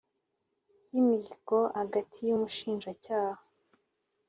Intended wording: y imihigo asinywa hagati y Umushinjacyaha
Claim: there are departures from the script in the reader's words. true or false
true